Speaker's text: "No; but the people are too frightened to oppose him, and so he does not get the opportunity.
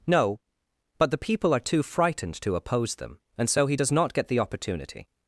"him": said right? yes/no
no